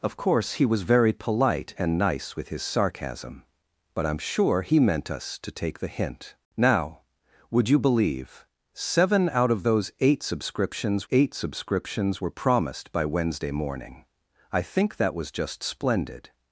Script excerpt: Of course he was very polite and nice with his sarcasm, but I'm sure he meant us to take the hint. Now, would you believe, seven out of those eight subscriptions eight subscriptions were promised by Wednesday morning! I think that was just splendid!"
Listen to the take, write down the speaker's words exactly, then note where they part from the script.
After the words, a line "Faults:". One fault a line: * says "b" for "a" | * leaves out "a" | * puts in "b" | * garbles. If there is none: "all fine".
Of course he was very polite and nice with his sarcasm, but I'm sure he meant us to take the hint. Now, would you believe, seven out of those eight subscriptions eight subscriptions were promised by Wednesday morning! I think that was just splendid!"
Faults:
all fine